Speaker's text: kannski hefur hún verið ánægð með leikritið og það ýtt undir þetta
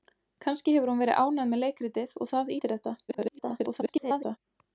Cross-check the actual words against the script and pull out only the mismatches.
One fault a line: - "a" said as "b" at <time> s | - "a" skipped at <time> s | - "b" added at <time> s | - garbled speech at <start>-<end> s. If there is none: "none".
- "ýtt" skipped at 2.5 s
- garbled speech at 3.1-4.4 s